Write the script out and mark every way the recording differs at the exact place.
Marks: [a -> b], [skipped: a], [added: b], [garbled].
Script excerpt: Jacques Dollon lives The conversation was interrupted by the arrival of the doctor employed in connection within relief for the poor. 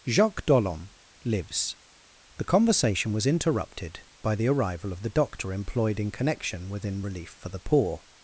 Jacques Dollon lives The conversation was interrupted by the arrival of the doctor employed in connection within relief for the poor.